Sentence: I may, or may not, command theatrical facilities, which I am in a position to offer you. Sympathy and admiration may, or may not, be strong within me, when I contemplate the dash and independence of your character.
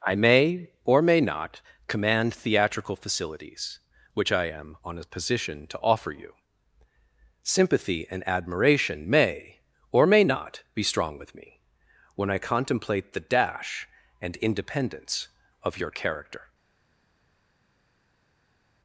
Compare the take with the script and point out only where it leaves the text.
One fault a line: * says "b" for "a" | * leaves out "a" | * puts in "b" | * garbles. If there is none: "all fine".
* says "on" for "in"
* says "with" for "within"